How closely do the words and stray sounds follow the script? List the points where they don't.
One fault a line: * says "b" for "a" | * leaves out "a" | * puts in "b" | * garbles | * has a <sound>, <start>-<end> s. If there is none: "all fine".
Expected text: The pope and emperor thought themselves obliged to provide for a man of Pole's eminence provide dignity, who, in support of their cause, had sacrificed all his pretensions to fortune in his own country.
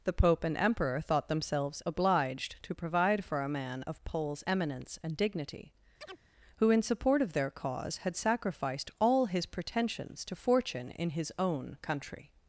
* says "and" for "provide"
* has a chirp, 6.0-6.2 s